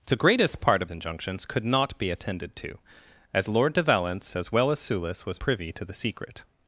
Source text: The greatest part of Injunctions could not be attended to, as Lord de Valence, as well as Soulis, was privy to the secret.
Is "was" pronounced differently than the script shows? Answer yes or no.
no